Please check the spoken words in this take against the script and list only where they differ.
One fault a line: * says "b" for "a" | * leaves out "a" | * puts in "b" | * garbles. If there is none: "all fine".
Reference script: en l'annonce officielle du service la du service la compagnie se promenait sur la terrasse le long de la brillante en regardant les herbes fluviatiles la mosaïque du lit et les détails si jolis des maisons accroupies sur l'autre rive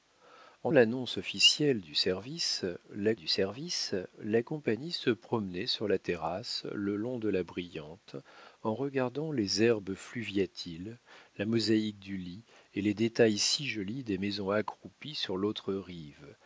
all fine